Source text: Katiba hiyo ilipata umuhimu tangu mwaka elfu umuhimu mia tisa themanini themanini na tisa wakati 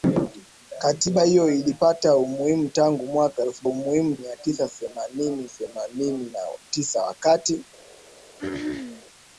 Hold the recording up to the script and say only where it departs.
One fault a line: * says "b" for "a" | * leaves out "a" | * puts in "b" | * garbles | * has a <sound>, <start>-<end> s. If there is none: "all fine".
* has a throat clearing, 8.4-9.0 s